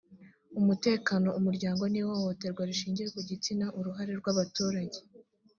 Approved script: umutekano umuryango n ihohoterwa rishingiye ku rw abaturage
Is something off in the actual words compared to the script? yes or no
yes